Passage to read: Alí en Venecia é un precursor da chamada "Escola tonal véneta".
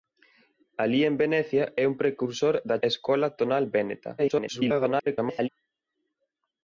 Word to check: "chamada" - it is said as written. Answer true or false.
false